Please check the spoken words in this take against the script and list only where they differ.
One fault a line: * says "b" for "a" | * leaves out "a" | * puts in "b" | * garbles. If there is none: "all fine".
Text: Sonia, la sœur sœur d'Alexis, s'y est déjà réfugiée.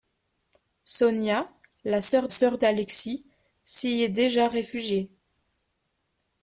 all fine